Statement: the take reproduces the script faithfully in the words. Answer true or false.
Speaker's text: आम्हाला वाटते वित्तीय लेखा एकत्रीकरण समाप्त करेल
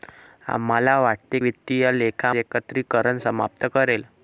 true